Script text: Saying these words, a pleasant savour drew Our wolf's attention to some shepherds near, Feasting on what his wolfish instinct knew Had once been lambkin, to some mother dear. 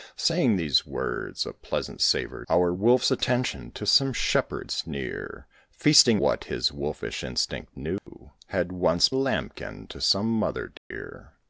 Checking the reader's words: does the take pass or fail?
fail